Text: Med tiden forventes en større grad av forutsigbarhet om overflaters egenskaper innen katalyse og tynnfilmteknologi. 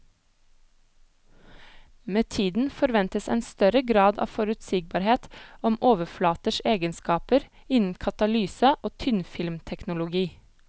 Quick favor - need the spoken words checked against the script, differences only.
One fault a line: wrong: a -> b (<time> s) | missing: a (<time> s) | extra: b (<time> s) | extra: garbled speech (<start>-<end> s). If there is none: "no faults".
no faults